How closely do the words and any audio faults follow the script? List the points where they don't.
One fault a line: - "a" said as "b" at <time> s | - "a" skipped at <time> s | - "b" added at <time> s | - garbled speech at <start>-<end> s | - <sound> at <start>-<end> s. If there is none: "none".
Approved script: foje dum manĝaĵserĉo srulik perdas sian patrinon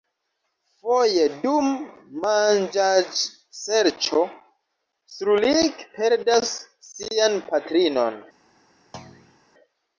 - thud at 8.9-9.4 s